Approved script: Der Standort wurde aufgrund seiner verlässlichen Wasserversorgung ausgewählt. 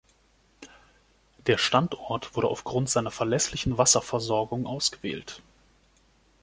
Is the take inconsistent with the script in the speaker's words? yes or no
no